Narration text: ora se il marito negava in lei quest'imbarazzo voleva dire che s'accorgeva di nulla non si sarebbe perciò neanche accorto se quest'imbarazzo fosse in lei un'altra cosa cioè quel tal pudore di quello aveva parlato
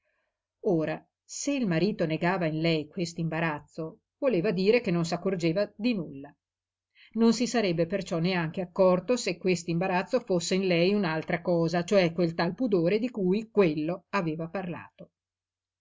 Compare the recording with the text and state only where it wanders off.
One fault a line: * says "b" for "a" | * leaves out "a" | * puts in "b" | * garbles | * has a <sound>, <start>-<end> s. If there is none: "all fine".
* puts in "non"
* puts in "cui"